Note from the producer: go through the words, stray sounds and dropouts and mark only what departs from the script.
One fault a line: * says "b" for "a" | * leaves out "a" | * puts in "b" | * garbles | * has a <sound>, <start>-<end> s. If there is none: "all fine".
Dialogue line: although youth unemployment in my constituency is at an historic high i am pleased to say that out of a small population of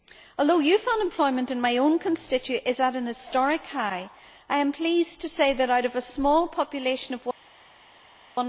* puts in "own"